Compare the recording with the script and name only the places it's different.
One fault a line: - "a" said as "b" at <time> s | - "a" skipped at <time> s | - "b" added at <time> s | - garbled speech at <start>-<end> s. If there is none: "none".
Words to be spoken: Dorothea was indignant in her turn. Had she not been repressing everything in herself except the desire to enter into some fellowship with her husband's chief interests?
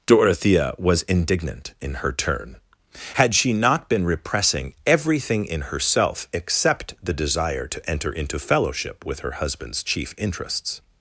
- "some" skipped at 8.4 s